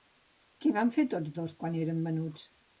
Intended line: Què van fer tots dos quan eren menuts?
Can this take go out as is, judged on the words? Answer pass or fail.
pass